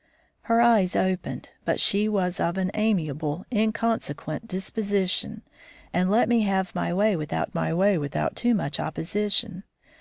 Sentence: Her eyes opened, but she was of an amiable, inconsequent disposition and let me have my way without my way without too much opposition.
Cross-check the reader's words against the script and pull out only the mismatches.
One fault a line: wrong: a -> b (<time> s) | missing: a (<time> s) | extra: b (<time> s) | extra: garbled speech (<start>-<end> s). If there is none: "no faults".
no faults